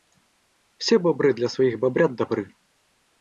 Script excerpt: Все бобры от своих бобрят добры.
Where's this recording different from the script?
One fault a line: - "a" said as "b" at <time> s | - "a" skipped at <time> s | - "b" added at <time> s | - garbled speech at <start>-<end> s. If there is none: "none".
- "от" said as "для" at 1.4 s